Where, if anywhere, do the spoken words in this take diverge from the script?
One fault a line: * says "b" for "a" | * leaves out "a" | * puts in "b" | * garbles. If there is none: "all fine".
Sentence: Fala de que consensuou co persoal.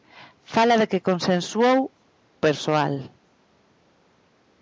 * leaves out "co"